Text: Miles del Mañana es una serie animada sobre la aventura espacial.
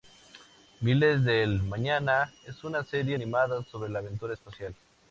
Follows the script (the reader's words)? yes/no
yes